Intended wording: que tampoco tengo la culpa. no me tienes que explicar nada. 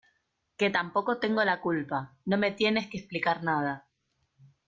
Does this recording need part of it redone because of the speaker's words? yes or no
no